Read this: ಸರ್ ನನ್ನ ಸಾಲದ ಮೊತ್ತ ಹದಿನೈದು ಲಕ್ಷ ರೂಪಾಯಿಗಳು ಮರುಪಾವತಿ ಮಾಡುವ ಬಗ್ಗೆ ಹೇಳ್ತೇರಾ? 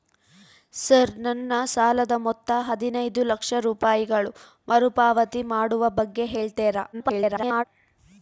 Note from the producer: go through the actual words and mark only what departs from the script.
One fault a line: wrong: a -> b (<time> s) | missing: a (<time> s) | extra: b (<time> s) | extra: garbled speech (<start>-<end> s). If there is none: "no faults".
extra: garbled speech (6.9-7.6 s)